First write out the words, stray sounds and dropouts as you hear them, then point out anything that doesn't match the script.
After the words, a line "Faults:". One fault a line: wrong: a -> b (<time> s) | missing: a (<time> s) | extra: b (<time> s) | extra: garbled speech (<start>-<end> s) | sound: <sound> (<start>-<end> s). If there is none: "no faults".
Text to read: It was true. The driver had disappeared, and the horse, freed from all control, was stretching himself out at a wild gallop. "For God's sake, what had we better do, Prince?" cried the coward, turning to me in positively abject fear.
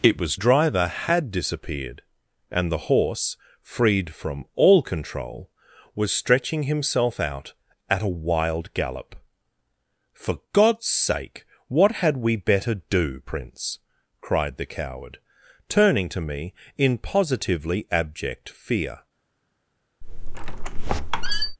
It was driver had disappeared, and the horse, freed from all control, was stretching himself out at a wild gallop. "For God's sake, what had we better do, Prince?" cried the coward, turning to me in positively abject fear.
Faults:
missing: true The (0.3 s)
sound: squeak (20.0-21.6 s)